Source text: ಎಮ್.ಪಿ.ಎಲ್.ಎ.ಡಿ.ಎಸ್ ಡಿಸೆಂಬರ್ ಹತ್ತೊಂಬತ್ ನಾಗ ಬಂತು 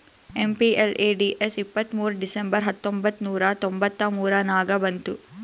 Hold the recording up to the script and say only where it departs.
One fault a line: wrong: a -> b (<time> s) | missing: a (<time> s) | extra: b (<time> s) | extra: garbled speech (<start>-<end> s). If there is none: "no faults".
extra: ಇಪ್ಪತ್ತ್ಮೂರ್ (1.6 s)
extra: ನೂರಾ ತೊಂಬತ್ತ ಮೂರ (3.2 s)